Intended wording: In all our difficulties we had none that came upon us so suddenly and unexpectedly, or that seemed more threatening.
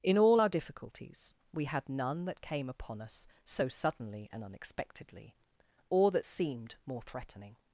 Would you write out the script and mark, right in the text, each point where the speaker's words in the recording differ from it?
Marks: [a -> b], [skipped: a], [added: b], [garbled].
In all our difficulties we had none that came upon us so suddenly and unexpectedly, or that seemed more threatening.